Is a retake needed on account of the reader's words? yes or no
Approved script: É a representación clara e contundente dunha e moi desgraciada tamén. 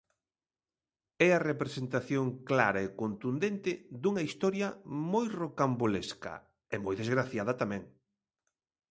yes